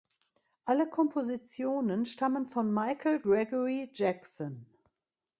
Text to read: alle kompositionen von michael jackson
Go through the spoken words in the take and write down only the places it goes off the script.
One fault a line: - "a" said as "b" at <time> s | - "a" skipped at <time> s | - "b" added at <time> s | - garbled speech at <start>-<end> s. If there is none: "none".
- "stammen" added at 2.1 s
- "gregory" added at 3.2 s